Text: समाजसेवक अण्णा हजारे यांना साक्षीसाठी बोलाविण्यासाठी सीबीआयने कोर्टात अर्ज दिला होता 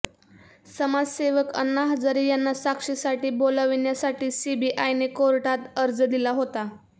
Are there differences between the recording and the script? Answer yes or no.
no